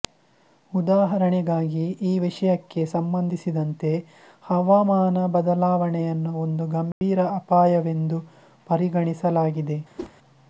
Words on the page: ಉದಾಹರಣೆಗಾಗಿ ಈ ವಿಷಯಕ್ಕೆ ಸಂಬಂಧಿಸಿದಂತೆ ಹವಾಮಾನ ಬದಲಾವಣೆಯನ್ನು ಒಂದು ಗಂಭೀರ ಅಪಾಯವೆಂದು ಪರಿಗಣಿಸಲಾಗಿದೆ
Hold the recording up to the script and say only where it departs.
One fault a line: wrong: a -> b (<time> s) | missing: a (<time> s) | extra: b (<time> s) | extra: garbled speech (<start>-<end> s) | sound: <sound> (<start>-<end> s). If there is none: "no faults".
sound: dropout (6.9-7.0 s)
sound: whoosh (10.0-10.1 s)